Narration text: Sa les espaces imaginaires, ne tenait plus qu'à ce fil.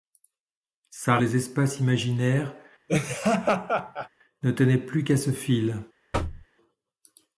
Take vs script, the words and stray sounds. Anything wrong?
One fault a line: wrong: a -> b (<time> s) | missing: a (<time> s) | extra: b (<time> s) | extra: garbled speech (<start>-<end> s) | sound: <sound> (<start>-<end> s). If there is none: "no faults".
sound: laugh (2.9-4.1 s)
sound: thud (6.1-6.5 s)